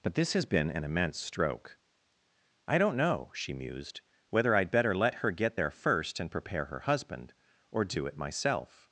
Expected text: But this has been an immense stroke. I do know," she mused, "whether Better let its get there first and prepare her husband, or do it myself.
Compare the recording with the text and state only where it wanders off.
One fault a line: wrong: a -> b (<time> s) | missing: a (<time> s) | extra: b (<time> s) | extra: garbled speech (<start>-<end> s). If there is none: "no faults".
wrong: do -> don't (2.8 s)
extra: I'd (4.5 s)
wrong: its -> her (5.2 s)